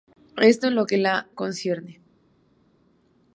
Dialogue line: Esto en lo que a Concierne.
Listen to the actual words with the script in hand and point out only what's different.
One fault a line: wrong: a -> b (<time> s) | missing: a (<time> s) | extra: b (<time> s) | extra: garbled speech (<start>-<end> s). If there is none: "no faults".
no faults